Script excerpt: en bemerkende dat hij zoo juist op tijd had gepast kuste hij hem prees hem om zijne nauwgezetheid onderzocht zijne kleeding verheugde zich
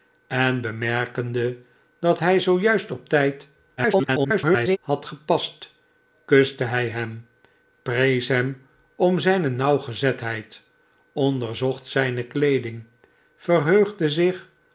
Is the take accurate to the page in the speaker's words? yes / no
no